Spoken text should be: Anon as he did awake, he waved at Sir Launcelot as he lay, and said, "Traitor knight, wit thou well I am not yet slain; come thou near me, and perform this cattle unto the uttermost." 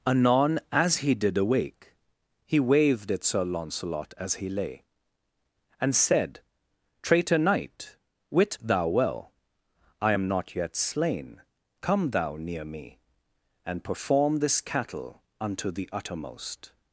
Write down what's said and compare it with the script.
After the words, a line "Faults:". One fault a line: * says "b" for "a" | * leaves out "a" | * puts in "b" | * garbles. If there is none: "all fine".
Anon as he did awake, he waved at Sir Launcelot as he lay, and said, "Traitor knight, wit thou well I am not yet slain; come thou near me, and perform this cattle unto the uttermost."
Faults:
all fine